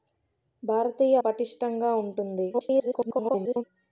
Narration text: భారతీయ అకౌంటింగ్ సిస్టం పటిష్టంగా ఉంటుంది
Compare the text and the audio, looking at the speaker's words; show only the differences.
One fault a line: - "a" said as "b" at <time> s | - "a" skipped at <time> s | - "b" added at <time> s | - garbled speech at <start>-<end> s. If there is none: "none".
- "అకౌంటింగ్ సిస్టం" skipped at 1.1 s
- garbled speech at 2.5-3.6 s